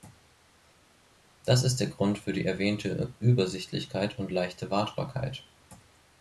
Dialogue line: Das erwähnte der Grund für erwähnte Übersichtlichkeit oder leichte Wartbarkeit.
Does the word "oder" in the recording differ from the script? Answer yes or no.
yes